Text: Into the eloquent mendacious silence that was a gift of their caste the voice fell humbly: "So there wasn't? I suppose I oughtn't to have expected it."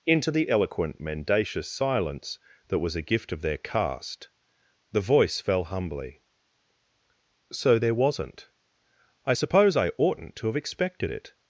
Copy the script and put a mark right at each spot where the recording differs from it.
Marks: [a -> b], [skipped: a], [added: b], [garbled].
Into the eloquent mendacious silence that was a gift of their caste the voice fell humbly: "So there wasn't? I suppose I oughtn't to have expected it."